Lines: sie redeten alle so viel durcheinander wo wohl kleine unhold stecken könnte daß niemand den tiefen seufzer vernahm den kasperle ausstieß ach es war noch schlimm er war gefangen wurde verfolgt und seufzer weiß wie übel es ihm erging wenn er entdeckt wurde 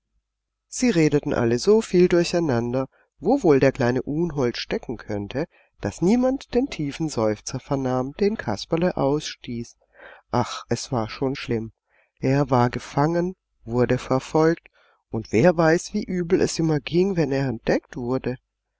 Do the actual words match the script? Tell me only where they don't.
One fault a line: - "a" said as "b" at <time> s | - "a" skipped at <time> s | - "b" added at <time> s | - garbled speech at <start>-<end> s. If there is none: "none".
- "der" added at 3.6 s
- "noch" said as "schon" at 11.1 s
- "seufzer" said as "wer" at 15.3 s